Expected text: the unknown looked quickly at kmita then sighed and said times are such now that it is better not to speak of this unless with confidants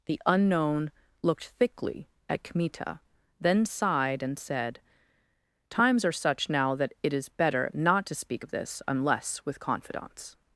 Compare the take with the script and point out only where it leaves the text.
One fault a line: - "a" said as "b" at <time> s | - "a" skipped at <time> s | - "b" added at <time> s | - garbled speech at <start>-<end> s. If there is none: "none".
- "quickly" said as "thickly" at 1.5 s